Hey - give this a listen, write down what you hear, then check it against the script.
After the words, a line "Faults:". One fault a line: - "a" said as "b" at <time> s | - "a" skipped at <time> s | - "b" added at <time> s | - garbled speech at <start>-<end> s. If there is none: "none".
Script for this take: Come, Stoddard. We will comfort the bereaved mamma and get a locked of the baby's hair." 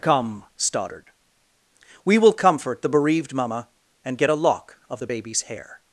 Come, Stoddard. We will comfort the bereaved mamma and get a lock of the baby's hair."
Faults:
- "locked" said as "lock" at 4.3 s